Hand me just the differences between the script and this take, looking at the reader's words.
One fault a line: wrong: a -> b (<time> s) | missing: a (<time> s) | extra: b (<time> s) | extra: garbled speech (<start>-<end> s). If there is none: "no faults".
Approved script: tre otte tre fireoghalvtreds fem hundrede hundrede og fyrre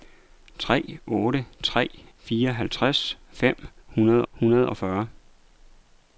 no faults